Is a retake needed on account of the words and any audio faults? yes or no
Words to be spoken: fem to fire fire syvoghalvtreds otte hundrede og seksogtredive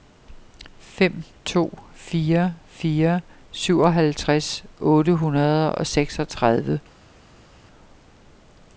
no